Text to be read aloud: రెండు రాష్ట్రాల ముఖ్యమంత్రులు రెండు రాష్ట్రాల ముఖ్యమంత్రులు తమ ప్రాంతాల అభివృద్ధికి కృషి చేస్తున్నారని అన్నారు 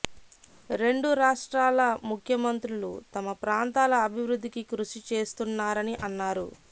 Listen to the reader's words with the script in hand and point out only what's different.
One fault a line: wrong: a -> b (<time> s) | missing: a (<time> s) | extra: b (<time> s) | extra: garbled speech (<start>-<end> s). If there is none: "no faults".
missing: రెండు రాష్ట్రాల ముఖ్యమంత్రులు (2.9 s)